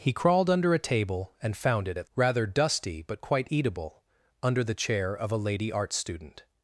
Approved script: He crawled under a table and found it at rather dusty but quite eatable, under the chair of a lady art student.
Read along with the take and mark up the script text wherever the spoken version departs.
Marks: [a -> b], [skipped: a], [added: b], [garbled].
He crawled under a table and found it at rather dusty but quite eatable, under the chair of a lady art student.